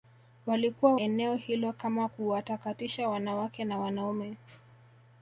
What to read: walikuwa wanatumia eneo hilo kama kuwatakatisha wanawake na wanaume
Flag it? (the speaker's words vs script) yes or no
yes